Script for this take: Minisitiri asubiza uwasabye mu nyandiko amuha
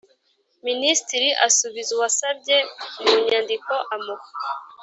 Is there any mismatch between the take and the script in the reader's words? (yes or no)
no